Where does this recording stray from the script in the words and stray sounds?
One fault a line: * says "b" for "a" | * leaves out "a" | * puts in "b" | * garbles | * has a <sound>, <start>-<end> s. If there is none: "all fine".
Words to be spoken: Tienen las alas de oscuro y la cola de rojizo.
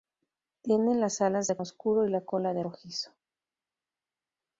all fine